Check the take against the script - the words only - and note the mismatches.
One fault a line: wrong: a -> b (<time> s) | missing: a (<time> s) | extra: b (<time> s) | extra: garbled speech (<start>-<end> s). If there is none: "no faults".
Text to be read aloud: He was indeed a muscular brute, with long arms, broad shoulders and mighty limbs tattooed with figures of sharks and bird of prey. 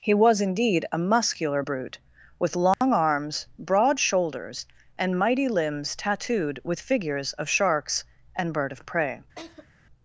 no faults